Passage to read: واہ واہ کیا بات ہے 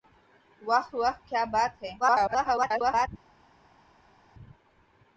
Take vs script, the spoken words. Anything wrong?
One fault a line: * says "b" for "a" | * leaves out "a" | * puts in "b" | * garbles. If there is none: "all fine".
* garbles